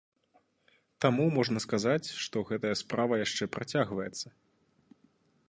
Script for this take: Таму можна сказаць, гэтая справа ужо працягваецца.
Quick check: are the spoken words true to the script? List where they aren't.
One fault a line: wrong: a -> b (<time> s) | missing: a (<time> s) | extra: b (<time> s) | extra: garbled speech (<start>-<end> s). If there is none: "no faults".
extra: што (2.2 s)
wrong: ужо -> яшчэ (3.2 s)